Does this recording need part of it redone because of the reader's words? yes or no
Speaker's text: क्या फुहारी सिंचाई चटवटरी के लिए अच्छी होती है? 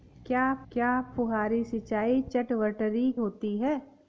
yes